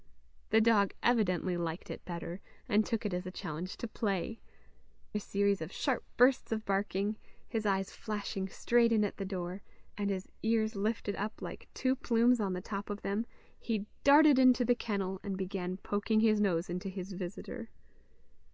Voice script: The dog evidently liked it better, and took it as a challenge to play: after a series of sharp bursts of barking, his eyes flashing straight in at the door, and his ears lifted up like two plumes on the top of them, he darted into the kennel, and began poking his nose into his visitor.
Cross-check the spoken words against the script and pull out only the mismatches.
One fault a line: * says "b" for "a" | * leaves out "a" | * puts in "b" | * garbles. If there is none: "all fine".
* leaves out "after"